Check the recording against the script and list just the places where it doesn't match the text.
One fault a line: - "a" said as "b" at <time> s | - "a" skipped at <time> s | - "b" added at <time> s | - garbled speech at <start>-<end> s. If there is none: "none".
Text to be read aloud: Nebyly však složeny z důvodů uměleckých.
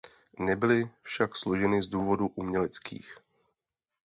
none